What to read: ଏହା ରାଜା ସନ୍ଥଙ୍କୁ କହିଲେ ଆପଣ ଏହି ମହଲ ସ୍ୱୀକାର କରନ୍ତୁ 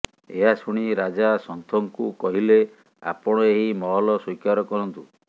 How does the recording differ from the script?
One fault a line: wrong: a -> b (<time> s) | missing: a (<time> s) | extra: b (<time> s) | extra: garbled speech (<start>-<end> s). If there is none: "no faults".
extra: ଶୁଣି (0.6 s)